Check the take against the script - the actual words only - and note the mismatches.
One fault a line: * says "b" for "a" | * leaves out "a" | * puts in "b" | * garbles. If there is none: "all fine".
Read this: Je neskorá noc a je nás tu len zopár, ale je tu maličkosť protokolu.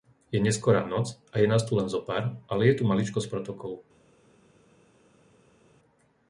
all fine